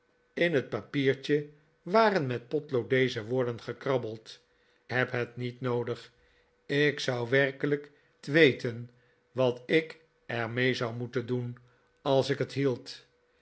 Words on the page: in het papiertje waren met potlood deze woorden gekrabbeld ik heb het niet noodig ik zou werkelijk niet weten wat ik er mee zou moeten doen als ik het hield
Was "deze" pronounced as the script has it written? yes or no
yes